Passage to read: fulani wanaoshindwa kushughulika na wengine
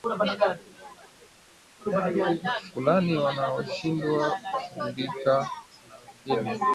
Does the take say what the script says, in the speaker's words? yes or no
yes